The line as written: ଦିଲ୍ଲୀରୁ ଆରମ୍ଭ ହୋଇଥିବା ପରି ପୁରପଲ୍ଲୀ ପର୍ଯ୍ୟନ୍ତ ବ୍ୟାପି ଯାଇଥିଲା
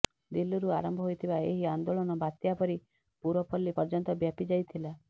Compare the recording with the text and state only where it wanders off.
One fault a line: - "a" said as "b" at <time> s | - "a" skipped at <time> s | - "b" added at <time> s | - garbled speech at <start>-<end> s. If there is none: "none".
- "ଏହି ଆନ୍ଦୋଳନ ବାତ୍ୟା" added at 1.4 s